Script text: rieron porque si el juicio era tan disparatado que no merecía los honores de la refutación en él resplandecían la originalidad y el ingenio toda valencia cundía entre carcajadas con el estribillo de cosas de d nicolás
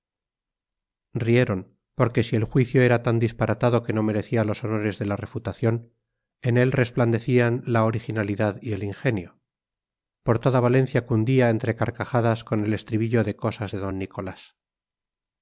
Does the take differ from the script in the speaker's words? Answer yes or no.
yes